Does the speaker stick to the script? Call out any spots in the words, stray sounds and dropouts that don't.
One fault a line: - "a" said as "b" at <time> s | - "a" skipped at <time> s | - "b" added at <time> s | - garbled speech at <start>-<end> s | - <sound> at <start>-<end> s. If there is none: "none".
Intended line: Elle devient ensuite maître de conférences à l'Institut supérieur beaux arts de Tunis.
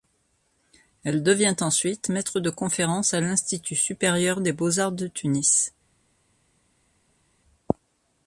- "des" added at 4.4 s